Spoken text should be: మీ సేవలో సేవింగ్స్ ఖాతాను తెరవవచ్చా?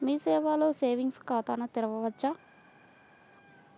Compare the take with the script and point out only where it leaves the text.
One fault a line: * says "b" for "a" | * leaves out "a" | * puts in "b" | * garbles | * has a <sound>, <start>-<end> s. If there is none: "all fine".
all fine